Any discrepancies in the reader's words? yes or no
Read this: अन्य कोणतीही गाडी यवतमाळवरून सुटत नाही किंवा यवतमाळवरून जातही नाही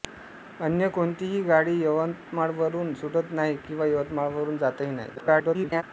yes